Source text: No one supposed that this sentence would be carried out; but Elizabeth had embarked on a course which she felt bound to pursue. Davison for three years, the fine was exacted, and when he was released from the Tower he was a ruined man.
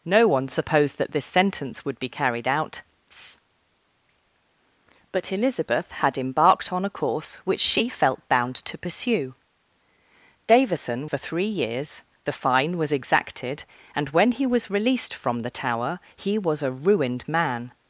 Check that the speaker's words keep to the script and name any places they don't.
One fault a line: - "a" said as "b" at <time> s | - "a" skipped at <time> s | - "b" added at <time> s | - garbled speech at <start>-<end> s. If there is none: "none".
none